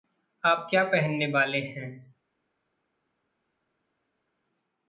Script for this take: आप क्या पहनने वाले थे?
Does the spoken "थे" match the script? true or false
false